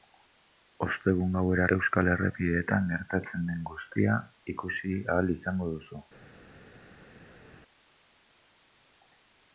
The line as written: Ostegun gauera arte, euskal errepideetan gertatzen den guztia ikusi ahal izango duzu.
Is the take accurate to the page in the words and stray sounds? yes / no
no